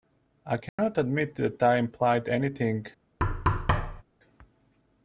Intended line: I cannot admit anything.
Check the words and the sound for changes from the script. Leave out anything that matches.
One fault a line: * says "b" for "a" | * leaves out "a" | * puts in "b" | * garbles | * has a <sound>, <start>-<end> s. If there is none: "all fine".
* has a dropout, 0.7-0.8 s
* puts in "that I implied"
* has a thud, 3.2-4.0 s